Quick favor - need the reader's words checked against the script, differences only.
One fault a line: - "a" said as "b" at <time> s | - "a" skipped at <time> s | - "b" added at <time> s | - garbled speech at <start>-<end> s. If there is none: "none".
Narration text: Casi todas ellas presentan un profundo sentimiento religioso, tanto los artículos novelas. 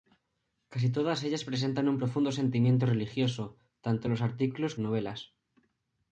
none